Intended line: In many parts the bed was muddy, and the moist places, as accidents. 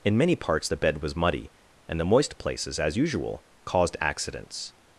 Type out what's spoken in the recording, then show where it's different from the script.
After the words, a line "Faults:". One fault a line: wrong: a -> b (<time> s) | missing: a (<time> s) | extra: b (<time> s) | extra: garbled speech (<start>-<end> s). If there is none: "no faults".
In many parts the bed was muddy, and the moist places, as usual, caused accidents.
Faults:
extra: usual caused (3.0 s)